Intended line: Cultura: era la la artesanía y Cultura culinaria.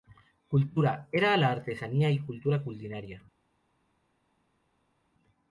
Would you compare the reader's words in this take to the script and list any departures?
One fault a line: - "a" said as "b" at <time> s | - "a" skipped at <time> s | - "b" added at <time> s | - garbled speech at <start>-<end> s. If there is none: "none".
- "la" skipped at 1.5 s